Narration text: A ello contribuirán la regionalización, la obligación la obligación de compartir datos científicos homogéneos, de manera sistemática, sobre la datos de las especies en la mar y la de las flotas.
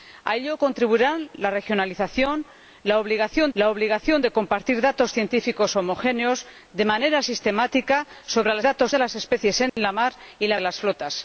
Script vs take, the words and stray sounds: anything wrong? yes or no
yes